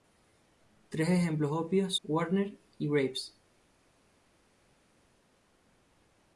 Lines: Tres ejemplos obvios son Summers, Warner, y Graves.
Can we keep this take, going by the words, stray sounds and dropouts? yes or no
no